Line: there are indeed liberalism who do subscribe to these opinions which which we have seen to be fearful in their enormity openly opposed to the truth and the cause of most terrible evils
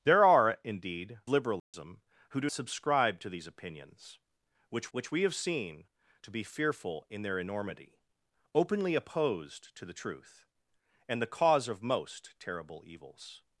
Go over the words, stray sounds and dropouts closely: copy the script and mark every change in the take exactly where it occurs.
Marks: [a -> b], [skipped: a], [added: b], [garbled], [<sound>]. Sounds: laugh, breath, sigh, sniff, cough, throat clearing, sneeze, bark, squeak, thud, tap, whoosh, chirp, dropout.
there are indeed liberalism [dropout] who do subscribe to these opinions which which we have seen to be fearful in their enormity openly opposed to the truth and the cause of most terrible evils